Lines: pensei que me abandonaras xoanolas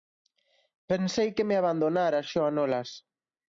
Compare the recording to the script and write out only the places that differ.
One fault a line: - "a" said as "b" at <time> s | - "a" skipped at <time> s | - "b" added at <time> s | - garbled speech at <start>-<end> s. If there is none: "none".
none